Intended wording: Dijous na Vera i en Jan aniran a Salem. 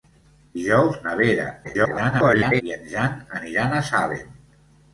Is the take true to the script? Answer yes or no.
no